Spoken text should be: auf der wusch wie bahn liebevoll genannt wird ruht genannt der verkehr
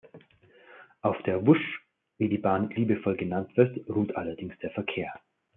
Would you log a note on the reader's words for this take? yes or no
yes